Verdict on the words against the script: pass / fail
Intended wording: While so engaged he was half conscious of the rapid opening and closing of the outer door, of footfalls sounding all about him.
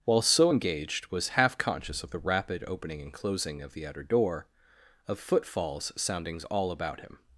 fail